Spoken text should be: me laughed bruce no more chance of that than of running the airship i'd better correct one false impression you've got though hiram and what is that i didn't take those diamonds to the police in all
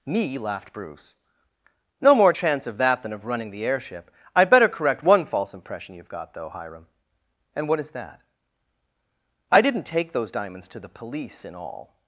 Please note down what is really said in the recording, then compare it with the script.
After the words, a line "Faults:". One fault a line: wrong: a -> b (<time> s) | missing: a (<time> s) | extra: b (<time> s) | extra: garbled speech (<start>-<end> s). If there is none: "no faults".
me laughed bruce no more chance of that than of running the airship i'd better correct one false impression you've got though hiram and what is that i didn't take those diamonds to the police in all
Faults:
no faults